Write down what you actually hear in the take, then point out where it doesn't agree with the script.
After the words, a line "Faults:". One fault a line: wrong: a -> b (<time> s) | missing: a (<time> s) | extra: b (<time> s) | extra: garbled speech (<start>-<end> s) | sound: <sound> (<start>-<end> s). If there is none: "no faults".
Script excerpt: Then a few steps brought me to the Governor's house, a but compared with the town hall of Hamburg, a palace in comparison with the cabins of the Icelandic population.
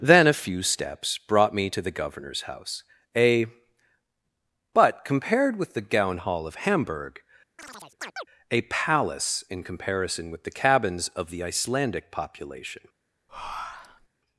Then a few steps brought me to the Governor's house, a but compared with the gown hall of Hamburg, a palace in comparison with the cabins of the Icelandic population.
Faults:
wrong: town -> gown (5.8 s)
sound: chirp (7.6-8.3 s)
sound: breath (13.3-14.1 s)